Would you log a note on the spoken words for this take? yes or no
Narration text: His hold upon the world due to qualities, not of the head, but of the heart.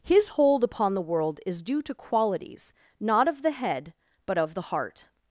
yes